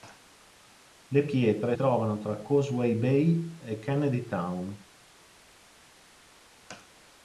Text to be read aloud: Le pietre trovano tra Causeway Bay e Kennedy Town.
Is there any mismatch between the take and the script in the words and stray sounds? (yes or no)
no